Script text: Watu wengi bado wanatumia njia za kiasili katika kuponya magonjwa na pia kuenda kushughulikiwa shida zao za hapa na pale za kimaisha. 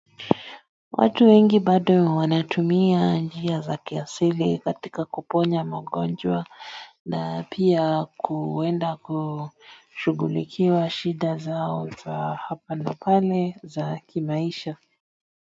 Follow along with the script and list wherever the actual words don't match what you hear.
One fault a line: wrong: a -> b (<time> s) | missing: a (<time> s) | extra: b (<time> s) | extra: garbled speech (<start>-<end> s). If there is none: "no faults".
no faults